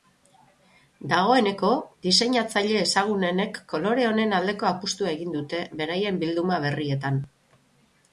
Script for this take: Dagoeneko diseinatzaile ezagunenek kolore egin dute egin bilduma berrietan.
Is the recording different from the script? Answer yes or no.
yes